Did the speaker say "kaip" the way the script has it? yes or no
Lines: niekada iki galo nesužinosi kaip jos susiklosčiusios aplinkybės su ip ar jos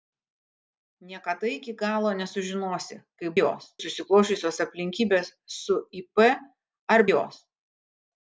yes